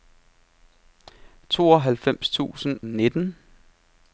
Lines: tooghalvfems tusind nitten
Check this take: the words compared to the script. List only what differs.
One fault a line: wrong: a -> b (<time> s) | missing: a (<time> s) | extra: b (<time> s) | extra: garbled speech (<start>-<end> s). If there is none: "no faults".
no faults